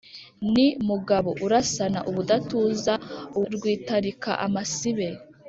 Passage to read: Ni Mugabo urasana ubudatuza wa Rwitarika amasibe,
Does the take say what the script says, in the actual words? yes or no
no